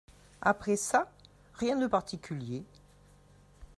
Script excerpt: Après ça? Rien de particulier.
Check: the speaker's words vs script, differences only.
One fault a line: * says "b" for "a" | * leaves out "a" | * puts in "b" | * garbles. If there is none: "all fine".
all fine